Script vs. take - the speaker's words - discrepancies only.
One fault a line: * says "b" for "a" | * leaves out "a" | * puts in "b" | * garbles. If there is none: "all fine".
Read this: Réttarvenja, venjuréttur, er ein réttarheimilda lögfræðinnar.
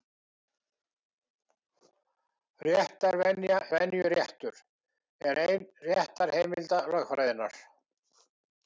all fine